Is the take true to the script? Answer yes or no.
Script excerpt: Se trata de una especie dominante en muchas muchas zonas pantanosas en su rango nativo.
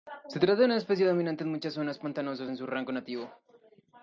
no